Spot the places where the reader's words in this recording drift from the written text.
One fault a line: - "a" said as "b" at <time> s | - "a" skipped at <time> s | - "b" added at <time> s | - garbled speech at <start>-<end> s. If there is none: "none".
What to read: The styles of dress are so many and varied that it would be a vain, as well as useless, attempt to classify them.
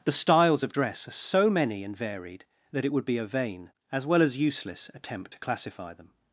none